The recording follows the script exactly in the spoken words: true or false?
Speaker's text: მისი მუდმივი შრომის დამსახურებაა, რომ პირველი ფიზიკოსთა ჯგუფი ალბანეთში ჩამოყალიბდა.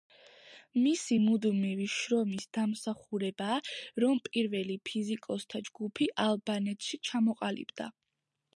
true